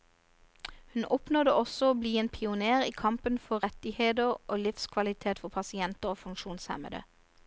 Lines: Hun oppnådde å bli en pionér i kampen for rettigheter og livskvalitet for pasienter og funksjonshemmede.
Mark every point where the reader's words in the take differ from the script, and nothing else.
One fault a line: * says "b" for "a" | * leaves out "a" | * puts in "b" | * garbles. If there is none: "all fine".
* puts in "også"